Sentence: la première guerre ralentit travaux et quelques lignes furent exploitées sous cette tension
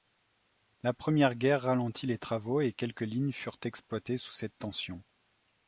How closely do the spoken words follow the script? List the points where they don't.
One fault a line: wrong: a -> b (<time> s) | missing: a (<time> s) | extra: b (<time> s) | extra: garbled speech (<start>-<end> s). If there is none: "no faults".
extra: les (2.1 s)